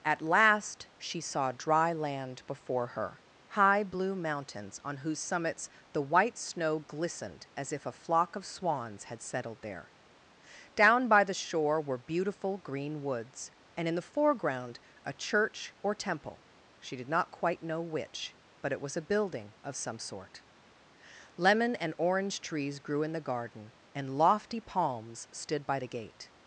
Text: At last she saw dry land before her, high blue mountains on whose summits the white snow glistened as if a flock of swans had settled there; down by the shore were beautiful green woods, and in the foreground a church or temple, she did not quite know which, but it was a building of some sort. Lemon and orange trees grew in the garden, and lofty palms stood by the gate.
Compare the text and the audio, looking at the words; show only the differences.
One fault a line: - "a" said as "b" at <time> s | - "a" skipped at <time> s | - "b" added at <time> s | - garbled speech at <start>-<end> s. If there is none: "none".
none